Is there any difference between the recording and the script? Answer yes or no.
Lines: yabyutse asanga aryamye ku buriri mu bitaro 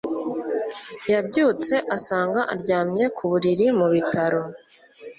no